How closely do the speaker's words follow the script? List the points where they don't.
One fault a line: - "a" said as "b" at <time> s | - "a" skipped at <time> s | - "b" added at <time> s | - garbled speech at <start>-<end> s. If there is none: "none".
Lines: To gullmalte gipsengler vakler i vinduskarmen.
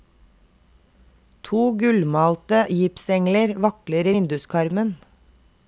none